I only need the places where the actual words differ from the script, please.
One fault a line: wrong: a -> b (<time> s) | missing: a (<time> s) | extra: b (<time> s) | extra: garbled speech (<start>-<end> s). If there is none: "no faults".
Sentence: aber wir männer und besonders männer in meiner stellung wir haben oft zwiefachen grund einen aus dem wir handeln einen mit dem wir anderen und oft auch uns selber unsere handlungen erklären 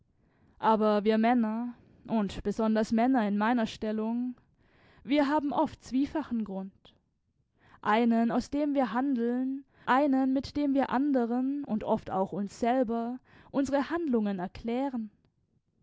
no faults